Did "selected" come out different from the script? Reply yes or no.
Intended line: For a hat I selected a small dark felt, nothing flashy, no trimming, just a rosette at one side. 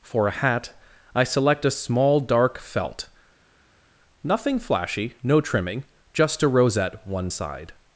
yes